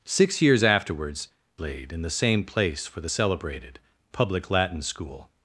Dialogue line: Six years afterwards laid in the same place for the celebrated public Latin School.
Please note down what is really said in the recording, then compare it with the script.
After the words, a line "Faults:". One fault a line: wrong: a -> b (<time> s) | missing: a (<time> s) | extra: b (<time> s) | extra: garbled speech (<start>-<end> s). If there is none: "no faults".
Six years afterwards laid in the same place for the celebrated public Latin School.
Faults:
no faults